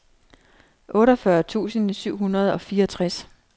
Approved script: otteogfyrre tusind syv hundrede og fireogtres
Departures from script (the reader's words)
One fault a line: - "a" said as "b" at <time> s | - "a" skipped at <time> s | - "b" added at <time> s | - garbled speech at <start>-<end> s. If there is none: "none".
none